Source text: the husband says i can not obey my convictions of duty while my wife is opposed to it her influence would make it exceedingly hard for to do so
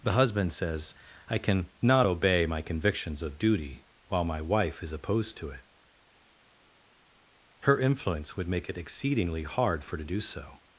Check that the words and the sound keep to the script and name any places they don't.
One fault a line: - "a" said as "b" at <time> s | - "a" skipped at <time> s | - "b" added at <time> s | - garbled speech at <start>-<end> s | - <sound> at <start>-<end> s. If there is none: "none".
none